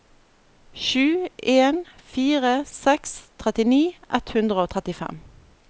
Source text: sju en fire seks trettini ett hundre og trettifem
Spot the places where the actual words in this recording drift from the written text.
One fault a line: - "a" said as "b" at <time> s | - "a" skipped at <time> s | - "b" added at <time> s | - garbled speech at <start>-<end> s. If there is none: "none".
none